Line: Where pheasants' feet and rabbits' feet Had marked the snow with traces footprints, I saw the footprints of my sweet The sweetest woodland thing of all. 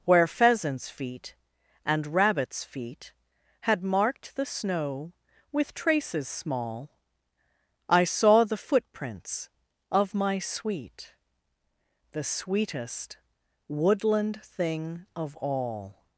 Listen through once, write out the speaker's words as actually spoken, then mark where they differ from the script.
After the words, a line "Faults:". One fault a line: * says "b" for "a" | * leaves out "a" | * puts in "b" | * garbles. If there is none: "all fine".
Where pheasants' feet and rabbits' feet Had marked the snow with traces small, I saw the footprints of my sweet The sweetest woodland thing of all.
Faults:
* says "small" for "footprints"